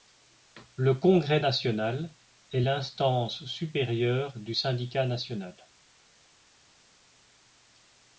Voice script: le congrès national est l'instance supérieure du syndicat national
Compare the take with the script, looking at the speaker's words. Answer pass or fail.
pass